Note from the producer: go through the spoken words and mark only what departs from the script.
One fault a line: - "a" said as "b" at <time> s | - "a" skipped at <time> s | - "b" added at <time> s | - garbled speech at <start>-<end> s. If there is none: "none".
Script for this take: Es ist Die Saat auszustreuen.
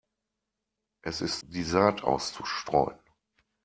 none